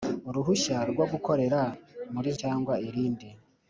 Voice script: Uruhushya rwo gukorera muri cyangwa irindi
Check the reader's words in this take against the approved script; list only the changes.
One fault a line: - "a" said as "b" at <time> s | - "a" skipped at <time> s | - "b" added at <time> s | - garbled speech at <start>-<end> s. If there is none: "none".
none